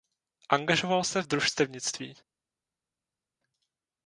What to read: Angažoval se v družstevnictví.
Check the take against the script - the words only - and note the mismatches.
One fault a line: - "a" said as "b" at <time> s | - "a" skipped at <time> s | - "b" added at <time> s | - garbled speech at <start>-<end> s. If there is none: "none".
none